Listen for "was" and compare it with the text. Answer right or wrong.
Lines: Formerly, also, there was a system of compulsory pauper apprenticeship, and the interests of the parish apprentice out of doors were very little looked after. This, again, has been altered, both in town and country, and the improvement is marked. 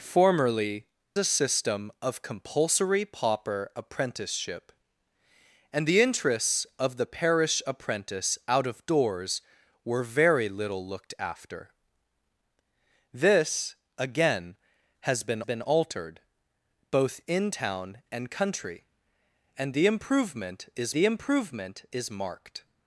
wrong